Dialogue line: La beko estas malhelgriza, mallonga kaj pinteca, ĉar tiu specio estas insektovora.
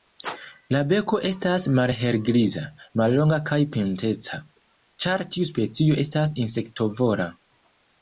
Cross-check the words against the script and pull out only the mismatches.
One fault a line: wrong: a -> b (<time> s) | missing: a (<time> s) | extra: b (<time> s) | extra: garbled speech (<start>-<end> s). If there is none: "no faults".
no faults